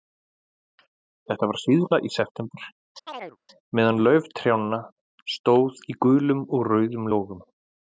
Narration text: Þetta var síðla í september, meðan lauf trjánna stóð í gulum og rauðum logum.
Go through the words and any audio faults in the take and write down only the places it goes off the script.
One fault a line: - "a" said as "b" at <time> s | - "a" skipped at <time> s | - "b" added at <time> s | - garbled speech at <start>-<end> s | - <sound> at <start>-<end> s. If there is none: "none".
- chirp at 3.1-3.4 s